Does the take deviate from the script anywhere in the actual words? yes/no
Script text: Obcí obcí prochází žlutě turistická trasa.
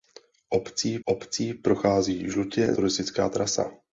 no